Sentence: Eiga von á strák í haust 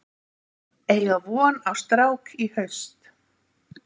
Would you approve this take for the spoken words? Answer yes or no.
yes